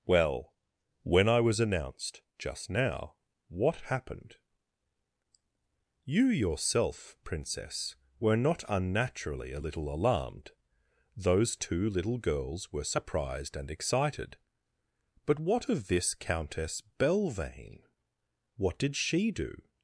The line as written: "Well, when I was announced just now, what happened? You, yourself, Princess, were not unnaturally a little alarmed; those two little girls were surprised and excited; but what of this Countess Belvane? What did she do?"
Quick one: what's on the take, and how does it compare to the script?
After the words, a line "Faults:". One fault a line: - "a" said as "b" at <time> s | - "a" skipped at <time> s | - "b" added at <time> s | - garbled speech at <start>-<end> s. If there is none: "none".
"Well, when I was announced just now, what happened? You, yourself, Princess, were not unnaturally a little alarmed; those two little girls were surprised and excited; but what of this Countess Belvane? What did she do?"
Faults:
none